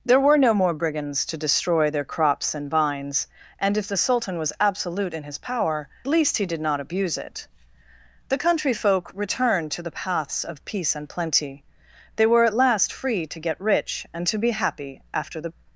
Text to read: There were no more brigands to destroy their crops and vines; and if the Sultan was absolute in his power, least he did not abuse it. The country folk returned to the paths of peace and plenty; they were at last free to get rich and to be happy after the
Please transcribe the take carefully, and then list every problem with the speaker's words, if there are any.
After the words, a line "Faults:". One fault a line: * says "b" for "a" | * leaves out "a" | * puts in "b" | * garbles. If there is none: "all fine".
There were no more brigands to destroy their crops and vines; and if the Sultan was absolute in his power, least he did not abuse it. The country folk returned to the paths of peace and plenty; they were at last free to get rich and to be happy after the
Faults:
all fine